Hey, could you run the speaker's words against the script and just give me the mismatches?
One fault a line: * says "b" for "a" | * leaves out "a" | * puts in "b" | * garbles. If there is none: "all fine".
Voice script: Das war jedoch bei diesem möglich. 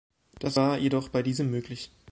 all fine